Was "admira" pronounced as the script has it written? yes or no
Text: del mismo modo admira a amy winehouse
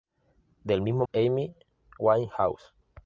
no